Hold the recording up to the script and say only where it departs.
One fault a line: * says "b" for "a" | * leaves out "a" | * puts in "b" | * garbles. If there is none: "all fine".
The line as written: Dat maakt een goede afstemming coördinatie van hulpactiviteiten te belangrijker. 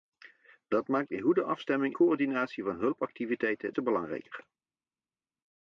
all fine